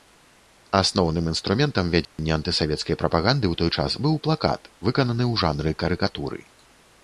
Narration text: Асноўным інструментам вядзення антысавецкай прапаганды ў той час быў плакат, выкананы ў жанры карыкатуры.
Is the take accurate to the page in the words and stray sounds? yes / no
no